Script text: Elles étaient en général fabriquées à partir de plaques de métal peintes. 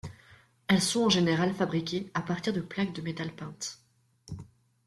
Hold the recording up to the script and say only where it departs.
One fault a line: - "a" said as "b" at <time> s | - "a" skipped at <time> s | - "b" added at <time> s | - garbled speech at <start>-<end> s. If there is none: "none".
- "étaient" said as "sont" at 0.8 s